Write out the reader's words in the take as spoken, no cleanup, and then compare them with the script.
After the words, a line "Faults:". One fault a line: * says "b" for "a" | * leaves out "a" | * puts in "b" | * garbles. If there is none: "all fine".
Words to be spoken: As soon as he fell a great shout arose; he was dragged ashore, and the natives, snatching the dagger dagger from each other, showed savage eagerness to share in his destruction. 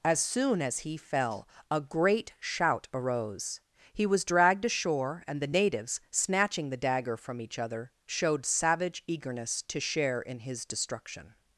As soon as he fell a great shout arose; he was dragged ashore, and the natives, snatching the dagger from each other, showed savage eagerness to share in his destruction.
Faults:
* leaves out "dagger"